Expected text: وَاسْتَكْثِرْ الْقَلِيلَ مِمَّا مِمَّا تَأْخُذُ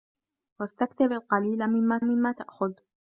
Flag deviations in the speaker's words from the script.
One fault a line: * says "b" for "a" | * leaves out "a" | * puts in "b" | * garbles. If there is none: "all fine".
all fine